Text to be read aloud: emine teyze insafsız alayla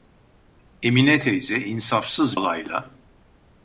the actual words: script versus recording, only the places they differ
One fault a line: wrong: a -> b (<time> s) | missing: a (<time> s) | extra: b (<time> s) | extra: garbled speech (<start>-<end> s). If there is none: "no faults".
no faults